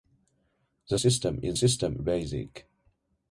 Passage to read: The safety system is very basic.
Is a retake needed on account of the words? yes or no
yes